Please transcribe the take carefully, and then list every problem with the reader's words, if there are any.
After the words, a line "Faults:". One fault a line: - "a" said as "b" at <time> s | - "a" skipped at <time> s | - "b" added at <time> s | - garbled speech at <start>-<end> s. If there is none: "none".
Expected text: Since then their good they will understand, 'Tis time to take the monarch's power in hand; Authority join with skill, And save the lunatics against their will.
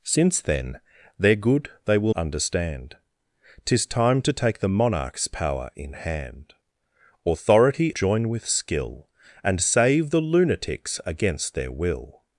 Since then their good they will understand, 'Tis time to take the monarch's power in hand; Authority join with skill, And save the lunatics against their will.
Faults:
none